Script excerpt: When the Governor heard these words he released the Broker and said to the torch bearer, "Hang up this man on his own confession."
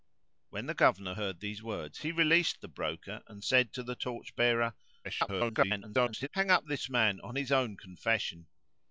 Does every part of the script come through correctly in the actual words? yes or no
no